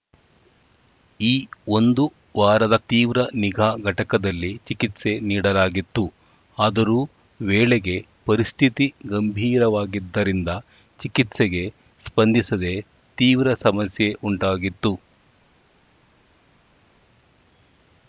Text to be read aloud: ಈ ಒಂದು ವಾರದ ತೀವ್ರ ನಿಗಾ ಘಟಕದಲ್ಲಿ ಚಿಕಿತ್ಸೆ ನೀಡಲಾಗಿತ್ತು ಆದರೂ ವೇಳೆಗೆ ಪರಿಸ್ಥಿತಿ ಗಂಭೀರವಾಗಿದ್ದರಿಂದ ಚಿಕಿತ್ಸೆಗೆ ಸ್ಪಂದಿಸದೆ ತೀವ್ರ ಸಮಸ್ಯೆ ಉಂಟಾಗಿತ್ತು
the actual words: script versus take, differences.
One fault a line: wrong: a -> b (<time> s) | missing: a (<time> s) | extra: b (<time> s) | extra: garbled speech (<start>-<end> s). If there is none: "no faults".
no faults